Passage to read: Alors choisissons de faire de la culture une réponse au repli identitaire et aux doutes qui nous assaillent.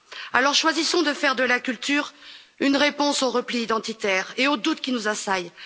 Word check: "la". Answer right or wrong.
right